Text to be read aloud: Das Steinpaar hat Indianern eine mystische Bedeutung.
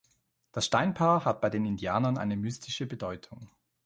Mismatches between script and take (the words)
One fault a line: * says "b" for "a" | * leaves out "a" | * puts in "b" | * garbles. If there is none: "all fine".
* puts in "bei den"